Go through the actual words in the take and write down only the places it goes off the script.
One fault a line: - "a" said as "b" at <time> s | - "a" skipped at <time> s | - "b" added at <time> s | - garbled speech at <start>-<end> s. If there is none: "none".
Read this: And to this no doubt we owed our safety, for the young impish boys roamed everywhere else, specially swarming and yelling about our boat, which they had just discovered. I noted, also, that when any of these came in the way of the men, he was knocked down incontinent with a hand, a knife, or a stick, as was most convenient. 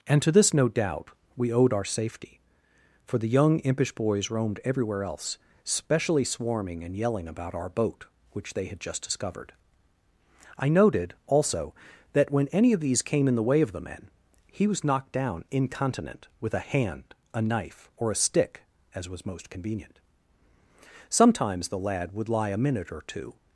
- "Sometimes the lad would lie a minute or two" added at 21.1 s